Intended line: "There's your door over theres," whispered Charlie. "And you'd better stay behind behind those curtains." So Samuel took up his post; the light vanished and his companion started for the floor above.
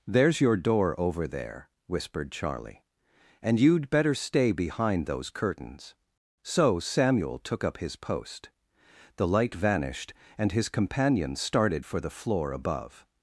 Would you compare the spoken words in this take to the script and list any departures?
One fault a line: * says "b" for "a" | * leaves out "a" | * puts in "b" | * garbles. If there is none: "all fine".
* says "there" for "theres"
* leaves out "behind"